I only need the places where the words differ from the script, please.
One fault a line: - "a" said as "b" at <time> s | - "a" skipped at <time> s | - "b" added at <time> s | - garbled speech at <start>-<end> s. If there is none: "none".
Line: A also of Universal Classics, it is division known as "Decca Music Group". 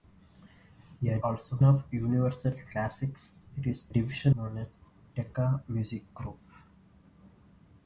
none